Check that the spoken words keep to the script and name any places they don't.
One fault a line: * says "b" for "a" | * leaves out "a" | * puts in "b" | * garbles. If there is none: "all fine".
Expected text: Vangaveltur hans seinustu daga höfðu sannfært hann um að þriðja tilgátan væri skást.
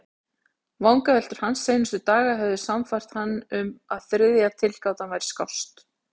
all fine